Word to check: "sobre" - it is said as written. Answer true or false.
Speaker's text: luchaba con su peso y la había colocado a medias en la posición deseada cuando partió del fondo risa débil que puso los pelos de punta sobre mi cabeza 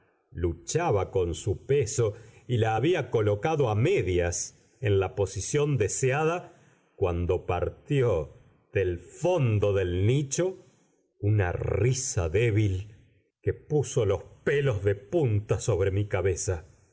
true